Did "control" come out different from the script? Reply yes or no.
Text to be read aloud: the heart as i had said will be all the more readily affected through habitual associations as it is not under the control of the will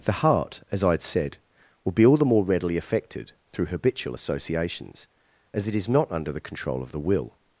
no